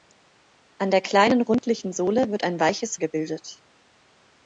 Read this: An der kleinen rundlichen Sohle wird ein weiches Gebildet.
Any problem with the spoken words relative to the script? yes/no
no